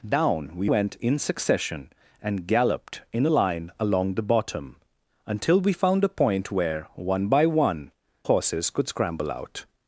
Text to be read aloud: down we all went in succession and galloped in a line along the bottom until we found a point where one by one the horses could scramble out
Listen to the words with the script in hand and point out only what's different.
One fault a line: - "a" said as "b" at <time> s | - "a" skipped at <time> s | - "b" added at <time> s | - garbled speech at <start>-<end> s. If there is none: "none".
- "all" skipped at 0.7 s
- "the" skipped at 7.9 s